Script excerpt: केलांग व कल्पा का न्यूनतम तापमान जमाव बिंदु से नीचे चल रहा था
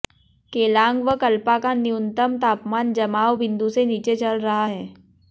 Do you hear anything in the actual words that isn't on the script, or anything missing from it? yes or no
yes